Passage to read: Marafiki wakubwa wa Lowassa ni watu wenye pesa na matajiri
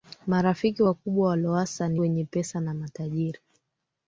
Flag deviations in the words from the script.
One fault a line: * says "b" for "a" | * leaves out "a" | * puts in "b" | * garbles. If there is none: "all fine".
* leaves out "watu"